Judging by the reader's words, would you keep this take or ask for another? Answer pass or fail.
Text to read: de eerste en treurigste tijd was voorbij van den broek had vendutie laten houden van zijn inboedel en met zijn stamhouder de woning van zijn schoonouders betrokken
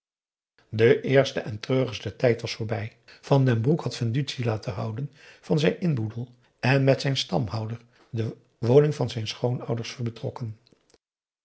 pass